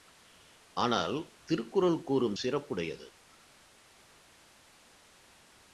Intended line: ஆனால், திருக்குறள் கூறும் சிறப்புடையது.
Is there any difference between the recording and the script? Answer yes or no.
no